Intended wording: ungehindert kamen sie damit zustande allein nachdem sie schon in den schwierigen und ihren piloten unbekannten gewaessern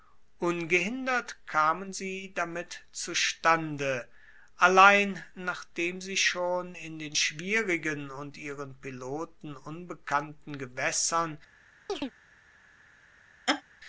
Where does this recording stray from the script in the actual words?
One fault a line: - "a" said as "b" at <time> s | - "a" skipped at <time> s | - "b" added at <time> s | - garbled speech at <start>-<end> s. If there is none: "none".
none